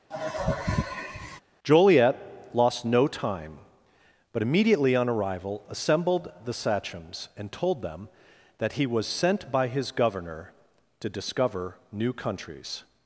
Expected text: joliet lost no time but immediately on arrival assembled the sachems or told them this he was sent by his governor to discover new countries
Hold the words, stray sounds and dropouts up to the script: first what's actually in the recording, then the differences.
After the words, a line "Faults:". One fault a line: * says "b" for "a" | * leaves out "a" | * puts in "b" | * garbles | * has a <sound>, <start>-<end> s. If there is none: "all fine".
joliet lost no time but immediately on arrival assembled the sachems and told them that he was sent by his governor to discover new countries
Faults:
* has a sigh, 0.1-1.4 s
* says "and" for "or"
* says "that" for "this"